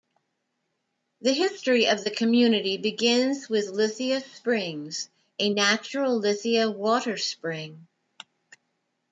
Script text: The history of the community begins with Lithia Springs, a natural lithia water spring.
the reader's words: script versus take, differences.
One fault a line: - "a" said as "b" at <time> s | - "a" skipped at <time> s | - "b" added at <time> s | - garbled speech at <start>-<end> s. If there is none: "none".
none